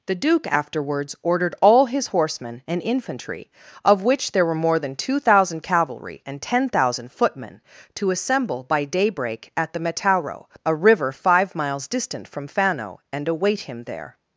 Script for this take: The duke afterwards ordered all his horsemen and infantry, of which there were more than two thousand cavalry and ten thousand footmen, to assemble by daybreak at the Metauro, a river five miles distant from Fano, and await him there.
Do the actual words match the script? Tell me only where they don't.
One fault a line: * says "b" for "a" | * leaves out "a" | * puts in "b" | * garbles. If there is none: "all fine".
all fine